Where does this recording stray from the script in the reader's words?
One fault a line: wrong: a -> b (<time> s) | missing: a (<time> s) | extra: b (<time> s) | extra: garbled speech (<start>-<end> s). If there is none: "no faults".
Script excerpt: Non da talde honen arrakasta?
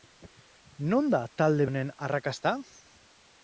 no faults